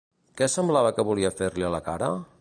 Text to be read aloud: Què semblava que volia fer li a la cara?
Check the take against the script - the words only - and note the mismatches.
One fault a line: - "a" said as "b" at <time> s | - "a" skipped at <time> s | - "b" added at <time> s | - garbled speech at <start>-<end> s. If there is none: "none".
none